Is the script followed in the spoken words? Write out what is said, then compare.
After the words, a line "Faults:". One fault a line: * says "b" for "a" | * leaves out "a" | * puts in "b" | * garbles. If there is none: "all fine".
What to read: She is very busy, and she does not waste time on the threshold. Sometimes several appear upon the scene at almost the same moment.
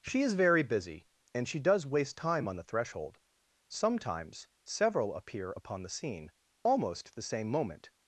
She is very busy, and she does waste time on the threshold. Sometimes several appear upon the scene almost the same moment.
Faults:
* leaves out "not"
* leaves out "at"